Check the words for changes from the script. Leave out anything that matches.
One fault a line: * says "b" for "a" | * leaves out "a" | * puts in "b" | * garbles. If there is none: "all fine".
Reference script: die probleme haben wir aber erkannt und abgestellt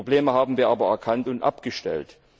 all fine